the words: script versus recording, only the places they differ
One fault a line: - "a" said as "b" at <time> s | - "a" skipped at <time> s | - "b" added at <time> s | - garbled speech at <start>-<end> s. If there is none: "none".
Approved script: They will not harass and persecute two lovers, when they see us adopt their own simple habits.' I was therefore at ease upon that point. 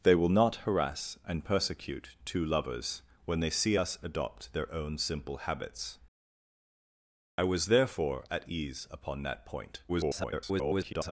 - garbled speech at 9.9-11.1 s